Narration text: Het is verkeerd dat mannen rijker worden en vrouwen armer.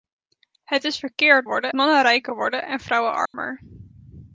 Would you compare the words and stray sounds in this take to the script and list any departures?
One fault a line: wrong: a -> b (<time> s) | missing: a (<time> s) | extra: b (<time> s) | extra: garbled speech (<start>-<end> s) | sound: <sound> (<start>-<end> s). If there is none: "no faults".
wrong: dat -> worden (1.4 s)
sound: dropout (3.3-3.3 s)